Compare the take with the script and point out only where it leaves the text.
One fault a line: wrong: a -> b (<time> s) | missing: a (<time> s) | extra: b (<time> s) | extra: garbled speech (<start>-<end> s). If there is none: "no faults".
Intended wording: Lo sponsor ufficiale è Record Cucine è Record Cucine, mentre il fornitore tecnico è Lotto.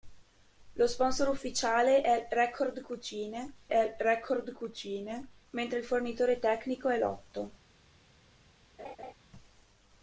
no faults